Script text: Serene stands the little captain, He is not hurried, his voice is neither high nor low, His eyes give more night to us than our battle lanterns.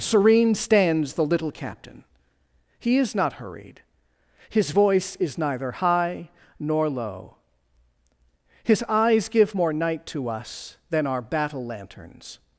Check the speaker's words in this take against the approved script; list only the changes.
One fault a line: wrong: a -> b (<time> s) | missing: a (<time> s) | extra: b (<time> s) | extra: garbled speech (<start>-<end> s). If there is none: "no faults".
no faults